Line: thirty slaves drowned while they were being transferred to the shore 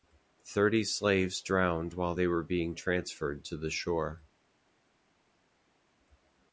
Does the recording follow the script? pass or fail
pass